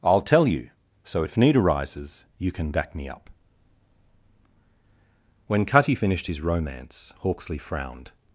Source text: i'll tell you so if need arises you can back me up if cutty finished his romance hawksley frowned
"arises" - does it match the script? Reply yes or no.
yes